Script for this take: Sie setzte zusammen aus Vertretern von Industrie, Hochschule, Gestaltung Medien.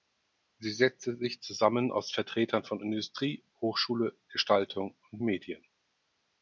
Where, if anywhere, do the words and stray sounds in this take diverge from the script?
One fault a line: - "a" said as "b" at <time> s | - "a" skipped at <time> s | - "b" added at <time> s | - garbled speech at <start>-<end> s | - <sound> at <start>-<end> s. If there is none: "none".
- "sich" added at 1.1 s
- "und" added at 5.1 s